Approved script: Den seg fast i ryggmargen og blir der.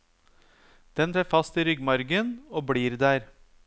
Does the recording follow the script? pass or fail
pass